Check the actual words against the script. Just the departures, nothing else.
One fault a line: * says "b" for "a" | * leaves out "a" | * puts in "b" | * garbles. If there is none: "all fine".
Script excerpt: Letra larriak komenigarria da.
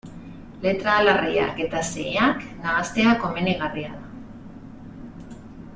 * puts in "eta xeheak nahastea"